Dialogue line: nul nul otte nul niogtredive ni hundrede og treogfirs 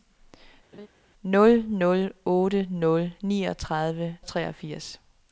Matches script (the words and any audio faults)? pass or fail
fail